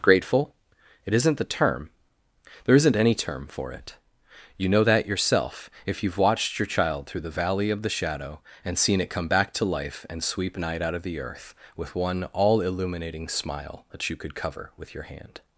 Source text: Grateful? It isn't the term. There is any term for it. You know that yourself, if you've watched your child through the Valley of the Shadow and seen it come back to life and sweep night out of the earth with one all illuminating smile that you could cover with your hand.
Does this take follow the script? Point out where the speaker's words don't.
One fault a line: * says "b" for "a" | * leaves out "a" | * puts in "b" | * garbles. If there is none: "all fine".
* says "isn't" for "is"